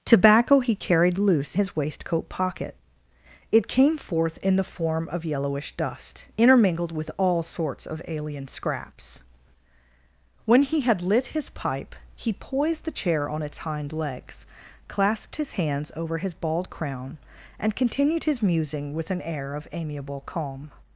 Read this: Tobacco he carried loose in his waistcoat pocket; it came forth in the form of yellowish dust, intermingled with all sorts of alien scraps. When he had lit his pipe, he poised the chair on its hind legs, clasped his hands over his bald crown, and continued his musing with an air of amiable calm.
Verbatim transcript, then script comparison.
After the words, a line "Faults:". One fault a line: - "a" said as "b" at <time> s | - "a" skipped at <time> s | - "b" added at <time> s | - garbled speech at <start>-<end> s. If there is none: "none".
Tobacco he carried loose his waistcoat pocket; it came forth in the form of yellowish dust, intermingled with all sorts of alien scraps. When he had lit his pipe, he poised the chair on its hind legs, clasped his hands over his bald crown, and continued his musing with an air of amiable calm.
Faults:
- "in" skipped at 1.6 s